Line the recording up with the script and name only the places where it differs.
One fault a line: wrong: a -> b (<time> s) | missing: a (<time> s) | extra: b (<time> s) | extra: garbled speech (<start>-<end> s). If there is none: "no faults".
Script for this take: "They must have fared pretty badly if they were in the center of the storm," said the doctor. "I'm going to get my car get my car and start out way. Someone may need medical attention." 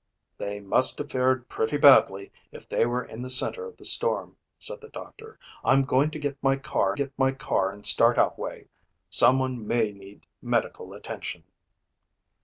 no faults